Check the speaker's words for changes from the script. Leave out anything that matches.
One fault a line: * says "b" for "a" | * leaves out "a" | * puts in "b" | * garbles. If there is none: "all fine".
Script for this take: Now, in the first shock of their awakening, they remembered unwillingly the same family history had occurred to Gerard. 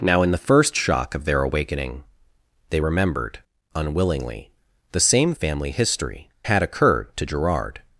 all fine